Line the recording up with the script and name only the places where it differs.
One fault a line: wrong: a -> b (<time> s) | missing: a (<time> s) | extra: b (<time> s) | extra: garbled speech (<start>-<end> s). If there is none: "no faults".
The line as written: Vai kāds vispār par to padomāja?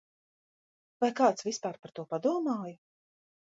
no faults